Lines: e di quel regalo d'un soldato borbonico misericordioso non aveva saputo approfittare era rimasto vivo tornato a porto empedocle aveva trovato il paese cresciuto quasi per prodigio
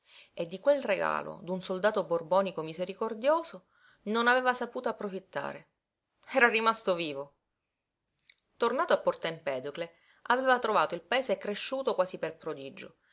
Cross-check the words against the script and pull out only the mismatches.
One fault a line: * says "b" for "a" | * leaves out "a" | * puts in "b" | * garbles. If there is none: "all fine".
all fine